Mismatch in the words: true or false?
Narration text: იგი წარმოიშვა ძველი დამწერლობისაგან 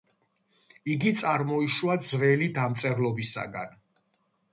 false